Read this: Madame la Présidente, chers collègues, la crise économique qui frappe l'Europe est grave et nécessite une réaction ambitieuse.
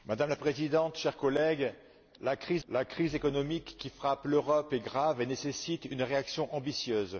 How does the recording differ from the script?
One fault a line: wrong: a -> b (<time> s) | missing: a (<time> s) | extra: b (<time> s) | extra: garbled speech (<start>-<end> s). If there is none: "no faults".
extra: la crise (2.7 s)